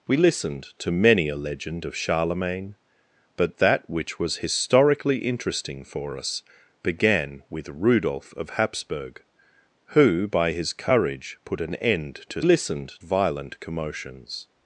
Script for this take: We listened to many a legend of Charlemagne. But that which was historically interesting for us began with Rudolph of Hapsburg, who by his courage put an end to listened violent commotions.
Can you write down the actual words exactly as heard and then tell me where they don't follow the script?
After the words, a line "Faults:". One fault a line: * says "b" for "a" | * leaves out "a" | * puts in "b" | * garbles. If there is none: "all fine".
We listened to many a legend of Charlemagne. But that which was historically interesting for us began with Rudolph of Hapsburg, who by his courage put an end to listened violent commotions.
Faults:
all fine